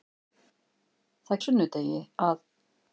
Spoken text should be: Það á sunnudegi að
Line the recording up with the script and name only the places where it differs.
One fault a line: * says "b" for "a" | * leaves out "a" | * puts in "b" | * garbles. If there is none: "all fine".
all fine